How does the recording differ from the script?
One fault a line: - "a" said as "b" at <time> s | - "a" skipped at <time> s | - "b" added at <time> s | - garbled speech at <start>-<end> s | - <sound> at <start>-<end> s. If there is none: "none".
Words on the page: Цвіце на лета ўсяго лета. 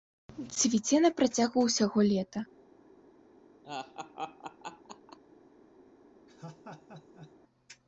- "лета" said as "працягу" at 1.2 s
- laugh at 3.6-5.2 s
- laugh at 6.3-7.3 s